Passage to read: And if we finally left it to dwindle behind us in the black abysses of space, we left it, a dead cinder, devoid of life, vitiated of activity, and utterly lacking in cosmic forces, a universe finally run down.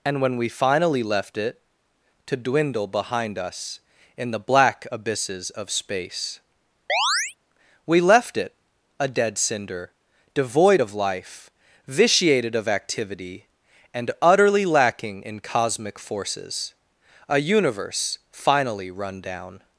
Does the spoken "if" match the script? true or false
false